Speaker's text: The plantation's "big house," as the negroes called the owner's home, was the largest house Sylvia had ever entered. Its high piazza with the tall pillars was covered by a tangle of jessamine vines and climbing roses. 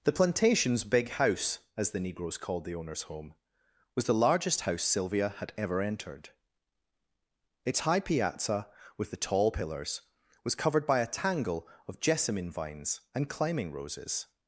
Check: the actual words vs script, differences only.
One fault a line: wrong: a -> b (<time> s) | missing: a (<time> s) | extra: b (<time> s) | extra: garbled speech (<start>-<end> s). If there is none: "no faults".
no faults